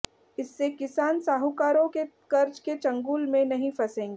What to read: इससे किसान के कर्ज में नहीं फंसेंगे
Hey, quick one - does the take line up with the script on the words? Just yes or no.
no